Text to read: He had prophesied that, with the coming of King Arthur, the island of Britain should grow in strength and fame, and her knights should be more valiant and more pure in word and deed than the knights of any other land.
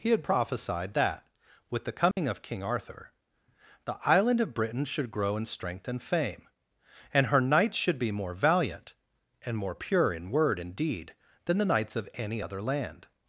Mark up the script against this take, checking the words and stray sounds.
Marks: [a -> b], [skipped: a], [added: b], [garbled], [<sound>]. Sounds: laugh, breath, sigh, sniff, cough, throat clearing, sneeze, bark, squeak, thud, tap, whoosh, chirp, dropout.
He had prophesied that, with the coming [dropout] of King Arthur, the island of Britain should grow in strength and fame, and her knights should be more valiant and more pure in word and deed than the knights of any other land.